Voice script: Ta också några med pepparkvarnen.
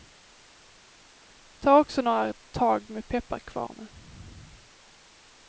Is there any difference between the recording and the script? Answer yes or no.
yes